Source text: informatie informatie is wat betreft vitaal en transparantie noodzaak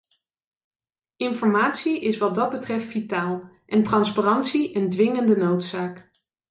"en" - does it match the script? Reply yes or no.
yes